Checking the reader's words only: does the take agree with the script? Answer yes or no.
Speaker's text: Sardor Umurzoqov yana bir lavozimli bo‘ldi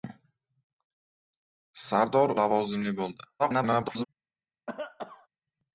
no